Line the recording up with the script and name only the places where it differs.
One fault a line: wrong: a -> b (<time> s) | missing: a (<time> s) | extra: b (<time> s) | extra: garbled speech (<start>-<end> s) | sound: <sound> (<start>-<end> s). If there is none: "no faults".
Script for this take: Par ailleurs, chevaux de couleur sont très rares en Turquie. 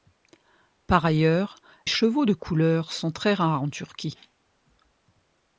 no faults